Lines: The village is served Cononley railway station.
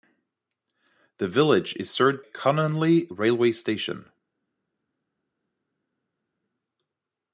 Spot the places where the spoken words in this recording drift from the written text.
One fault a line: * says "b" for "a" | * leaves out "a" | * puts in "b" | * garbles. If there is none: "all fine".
all fine